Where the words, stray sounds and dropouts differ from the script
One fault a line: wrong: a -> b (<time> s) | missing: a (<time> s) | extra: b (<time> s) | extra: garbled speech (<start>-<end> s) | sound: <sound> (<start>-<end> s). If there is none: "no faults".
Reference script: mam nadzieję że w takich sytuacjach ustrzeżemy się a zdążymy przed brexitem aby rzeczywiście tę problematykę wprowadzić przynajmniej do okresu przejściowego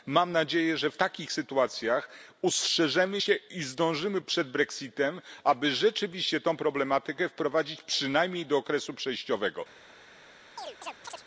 wrong: a -> i (3.3 s)
sound: chirp (10.6-11.2 s)